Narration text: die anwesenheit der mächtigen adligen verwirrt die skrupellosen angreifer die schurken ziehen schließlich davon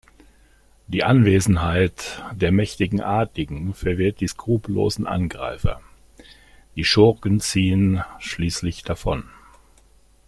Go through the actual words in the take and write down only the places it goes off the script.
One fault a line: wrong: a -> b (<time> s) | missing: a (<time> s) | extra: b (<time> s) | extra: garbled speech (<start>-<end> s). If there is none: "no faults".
no faults